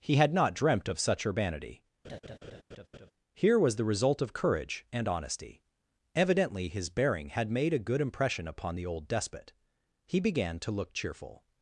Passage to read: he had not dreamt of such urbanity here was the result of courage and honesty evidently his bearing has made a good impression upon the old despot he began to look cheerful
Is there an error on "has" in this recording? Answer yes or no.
yes